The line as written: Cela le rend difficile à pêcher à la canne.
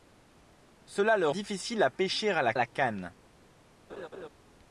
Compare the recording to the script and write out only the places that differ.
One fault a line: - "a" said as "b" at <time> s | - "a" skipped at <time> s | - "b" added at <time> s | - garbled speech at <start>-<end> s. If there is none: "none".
- "rend" skipped at 1.3 s
- "la" added at 2.5 s